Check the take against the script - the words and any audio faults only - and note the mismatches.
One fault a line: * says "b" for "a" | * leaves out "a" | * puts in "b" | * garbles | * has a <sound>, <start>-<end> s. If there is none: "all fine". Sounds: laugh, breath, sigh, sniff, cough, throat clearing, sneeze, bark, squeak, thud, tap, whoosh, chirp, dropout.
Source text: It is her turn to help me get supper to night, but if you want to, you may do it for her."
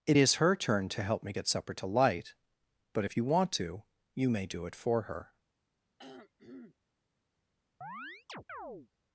* says "light" for "night"
* has a throat clearing, 6.0-6.8 s
* has a chirp, 7.8-8.9 s